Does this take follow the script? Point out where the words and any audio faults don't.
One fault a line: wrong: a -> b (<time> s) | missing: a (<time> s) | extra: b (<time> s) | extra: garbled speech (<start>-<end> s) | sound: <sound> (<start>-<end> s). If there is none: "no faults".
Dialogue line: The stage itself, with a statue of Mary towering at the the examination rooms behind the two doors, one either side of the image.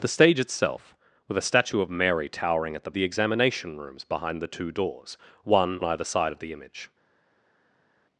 no faults